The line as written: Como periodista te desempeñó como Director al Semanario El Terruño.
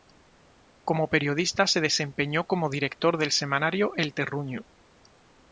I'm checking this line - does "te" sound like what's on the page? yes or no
no